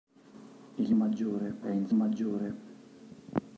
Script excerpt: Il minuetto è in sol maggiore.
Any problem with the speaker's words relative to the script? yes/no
yes